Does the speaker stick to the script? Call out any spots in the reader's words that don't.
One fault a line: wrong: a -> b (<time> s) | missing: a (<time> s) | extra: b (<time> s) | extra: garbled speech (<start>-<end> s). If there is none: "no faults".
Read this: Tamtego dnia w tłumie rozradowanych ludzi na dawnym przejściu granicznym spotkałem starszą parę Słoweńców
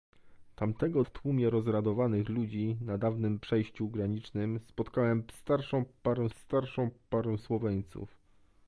missing: dnia (1.0 s)
extra: starszą parę (6.3 s)